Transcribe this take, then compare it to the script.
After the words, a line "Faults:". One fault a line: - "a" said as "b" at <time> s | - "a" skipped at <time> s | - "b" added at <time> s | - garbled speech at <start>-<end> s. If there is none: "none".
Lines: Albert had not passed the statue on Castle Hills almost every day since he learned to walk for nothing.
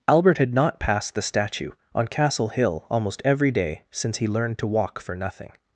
Albert had not passed the statue on Castle Hill almost every day since he learned to walk for nothing.
Faults:
- "Hills" said as "Hill" at 2.5 s